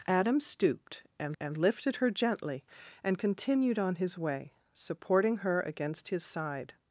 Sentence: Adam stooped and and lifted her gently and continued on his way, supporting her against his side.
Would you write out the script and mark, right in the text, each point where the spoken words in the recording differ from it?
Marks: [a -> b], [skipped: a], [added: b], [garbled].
Adam stooped and and lifted her gently and continued on his way, supporting her against his side.